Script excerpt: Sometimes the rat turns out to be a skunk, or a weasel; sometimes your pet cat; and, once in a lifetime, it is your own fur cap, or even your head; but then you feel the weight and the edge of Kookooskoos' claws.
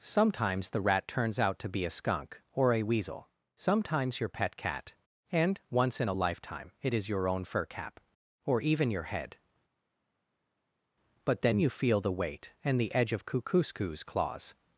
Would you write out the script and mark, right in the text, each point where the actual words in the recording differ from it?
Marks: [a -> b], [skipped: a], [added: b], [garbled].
Sometimes the rat turns out to be a skunk, or a weasel; sometimes your pet cat; and, once in a lifetime, it is your own fur cap, or even your head; but then you feel the weight and the edge of Kookooskoos' claws.